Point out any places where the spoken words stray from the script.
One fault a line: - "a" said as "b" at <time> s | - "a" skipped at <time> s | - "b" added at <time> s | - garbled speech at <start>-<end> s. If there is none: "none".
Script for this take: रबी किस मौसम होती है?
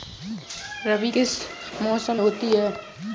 none